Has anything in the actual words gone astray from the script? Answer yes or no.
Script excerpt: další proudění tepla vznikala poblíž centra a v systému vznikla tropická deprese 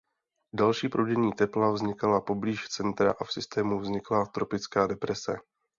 no